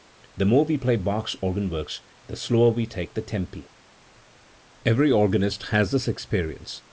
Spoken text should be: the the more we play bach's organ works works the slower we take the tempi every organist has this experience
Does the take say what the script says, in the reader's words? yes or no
no